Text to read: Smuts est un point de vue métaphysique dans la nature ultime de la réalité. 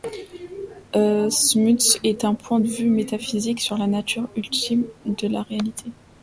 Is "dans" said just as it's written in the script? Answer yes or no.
no